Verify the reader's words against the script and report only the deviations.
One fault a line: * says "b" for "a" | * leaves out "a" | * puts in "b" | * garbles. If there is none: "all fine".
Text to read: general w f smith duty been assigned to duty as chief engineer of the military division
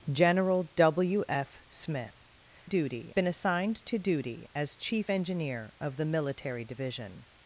all fine